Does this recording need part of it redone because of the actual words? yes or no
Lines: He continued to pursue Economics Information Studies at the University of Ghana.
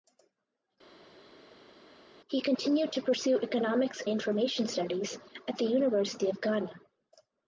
no